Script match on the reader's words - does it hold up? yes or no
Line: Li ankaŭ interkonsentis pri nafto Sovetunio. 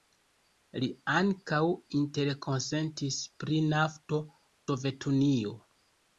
yes